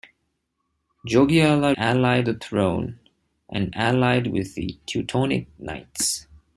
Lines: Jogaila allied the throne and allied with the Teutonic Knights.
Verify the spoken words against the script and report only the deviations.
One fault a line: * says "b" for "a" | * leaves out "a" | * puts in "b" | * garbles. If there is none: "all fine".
all fine